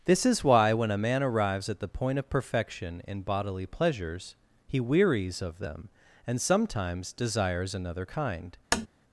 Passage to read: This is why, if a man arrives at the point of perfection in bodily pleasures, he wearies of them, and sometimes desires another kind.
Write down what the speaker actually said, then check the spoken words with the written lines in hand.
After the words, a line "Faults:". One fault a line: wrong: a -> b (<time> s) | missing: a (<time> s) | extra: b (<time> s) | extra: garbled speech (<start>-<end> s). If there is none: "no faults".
This is why, when a man arrives at the point of perfection in bodily pleasures, he wearies of them, and sometimes desires another kind.
Faults:
wrong: if -> when (0.7 s)